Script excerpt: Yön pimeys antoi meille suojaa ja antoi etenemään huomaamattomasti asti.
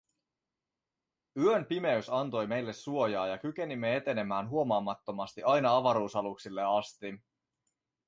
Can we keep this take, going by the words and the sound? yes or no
no